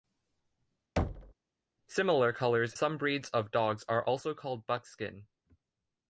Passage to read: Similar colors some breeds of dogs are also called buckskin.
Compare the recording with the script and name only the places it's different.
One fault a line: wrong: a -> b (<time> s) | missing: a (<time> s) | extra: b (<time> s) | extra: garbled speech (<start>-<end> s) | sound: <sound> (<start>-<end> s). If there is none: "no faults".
sound: thud (1.0-1.3 s)